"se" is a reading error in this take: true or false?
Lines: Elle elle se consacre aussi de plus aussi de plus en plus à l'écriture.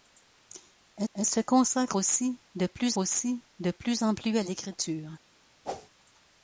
false